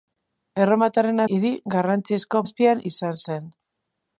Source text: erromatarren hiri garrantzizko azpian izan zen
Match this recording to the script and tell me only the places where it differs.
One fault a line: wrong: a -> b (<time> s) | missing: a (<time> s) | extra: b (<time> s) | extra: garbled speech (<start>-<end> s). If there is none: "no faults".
no faults